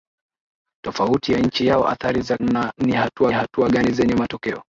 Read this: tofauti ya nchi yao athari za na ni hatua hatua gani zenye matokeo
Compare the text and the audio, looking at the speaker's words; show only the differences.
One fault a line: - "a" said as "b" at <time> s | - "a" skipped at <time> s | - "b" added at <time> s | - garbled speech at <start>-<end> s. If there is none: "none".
none